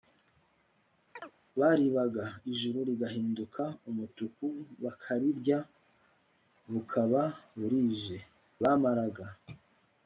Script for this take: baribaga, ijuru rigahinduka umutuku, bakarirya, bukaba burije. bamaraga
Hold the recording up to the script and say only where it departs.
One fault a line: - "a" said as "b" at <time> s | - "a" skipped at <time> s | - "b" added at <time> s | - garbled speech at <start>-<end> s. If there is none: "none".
none